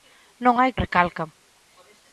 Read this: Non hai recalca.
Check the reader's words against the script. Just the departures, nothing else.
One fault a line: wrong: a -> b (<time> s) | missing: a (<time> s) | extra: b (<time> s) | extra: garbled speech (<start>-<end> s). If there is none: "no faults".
no faults